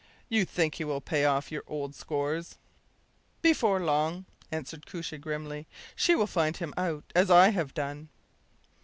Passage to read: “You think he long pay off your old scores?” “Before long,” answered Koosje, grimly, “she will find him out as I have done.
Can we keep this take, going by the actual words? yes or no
no